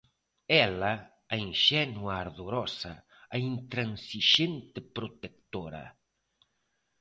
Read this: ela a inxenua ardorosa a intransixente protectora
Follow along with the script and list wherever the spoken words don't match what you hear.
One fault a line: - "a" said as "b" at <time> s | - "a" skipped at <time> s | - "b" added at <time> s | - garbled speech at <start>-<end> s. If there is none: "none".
none